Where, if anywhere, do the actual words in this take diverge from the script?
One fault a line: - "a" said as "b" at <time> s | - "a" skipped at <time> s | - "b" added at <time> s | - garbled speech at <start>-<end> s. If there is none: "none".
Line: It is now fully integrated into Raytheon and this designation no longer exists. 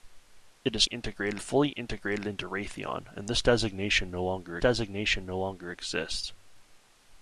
- "now" said as "integrated" at 0.8 s
- "designation no longer" added at 4.6 s